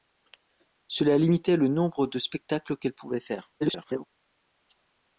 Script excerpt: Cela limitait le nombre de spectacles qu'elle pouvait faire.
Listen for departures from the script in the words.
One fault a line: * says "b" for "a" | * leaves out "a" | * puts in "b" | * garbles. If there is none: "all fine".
* garbles